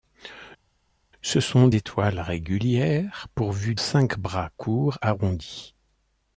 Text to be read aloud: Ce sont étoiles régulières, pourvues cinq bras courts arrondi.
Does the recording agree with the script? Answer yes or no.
yes